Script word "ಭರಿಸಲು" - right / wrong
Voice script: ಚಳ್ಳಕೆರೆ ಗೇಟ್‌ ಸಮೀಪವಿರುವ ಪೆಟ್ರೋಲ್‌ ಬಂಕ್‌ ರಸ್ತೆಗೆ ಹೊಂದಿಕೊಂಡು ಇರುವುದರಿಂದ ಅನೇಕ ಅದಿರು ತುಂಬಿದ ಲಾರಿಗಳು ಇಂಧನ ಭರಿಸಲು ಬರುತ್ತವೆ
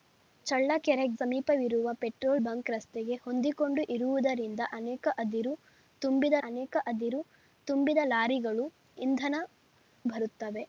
wrong